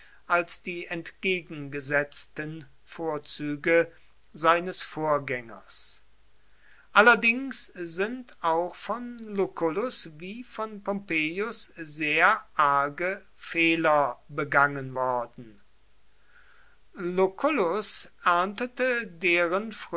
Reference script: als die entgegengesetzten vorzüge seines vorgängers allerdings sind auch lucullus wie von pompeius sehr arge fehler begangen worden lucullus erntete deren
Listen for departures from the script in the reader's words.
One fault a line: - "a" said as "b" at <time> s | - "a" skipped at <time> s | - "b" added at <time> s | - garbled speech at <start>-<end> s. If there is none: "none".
- "von" added at 8.8 s